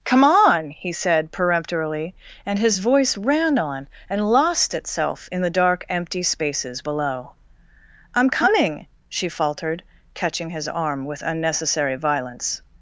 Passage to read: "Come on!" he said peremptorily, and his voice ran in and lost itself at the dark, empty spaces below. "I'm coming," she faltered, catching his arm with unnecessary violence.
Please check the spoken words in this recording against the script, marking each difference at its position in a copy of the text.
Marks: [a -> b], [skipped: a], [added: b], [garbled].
"Come on!" he said peremptorily, and his voice ran [in -> on] and lost itself [at -> in] the dark, empty spaces below. "I'm coming," she faltered, catching his arm with unnecessary violence.